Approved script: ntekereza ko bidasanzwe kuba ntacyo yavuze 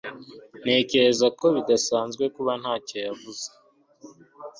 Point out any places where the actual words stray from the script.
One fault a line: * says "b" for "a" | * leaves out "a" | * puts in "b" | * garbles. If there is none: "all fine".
all fine